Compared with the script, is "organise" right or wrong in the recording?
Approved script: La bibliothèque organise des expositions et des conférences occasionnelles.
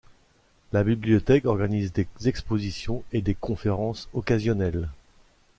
right